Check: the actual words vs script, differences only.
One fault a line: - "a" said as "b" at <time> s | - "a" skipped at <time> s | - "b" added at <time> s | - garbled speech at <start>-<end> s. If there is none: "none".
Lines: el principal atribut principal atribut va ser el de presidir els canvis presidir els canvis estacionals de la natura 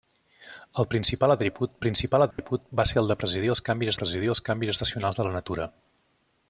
none